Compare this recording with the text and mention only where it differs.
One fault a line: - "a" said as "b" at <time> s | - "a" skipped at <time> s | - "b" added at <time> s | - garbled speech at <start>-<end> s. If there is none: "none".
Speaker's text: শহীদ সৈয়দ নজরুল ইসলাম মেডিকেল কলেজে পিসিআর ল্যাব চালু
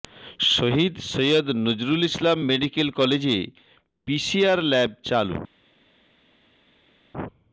none